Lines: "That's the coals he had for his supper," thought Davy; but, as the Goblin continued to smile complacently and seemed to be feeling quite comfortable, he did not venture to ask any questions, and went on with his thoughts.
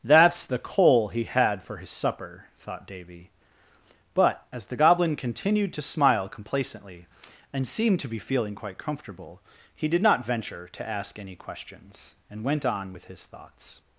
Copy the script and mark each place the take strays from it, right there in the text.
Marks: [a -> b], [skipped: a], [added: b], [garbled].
"That's the [coals -> coal] he had for his supper," thought Davy; but, as the Goblin continued to smile complacently and seemed to be feeling quite comfortable, he did not venture to ask any questions, and went on with his thoughts.